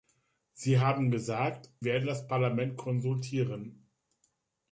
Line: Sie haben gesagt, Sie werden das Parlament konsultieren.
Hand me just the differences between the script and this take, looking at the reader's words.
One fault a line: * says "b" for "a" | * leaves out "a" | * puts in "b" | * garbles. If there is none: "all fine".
* leaves out "Sie"